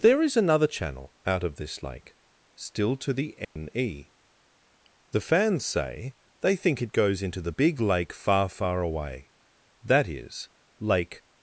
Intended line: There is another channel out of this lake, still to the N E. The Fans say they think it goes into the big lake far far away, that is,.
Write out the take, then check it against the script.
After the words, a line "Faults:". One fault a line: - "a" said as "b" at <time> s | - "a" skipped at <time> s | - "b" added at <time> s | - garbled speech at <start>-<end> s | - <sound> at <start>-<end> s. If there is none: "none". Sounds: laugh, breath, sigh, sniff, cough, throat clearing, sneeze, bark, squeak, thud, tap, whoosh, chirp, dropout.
There is another channel out of this lake, still to the N E. The Fans say they think it goes into the big lake far far away, that is, Lake
Faults:
- dropout at 3.4-3.6 s
- "Lake" added at 10.8 s